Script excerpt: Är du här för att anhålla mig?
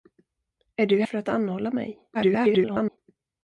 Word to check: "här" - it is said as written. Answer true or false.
false